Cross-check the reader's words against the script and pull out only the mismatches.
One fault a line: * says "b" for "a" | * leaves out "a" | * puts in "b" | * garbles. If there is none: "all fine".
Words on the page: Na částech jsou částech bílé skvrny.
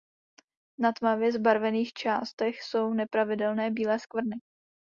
* puts in "tmavě zbarvených"
* says "nepravidelné" for "částech"